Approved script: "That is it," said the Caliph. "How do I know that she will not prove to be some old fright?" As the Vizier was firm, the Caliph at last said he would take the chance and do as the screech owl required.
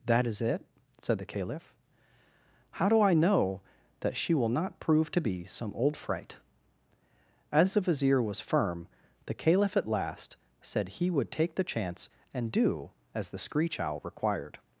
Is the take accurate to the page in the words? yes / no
yes